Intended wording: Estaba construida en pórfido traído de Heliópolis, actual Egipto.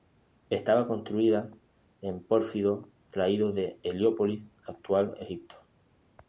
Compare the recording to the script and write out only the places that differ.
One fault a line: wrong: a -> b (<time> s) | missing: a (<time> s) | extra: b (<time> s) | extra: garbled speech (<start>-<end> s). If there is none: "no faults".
no faults